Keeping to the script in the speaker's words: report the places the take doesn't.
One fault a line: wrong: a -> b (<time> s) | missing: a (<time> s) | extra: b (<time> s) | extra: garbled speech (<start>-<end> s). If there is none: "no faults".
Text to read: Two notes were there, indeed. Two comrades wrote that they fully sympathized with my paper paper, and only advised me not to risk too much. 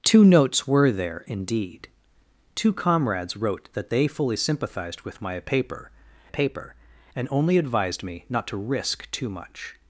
no faults